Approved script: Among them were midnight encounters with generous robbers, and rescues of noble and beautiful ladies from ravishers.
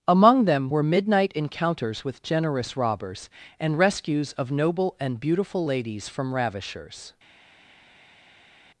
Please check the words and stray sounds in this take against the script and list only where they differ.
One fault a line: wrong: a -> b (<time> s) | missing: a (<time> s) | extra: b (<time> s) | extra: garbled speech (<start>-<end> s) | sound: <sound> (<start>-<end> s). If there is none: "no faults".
no faults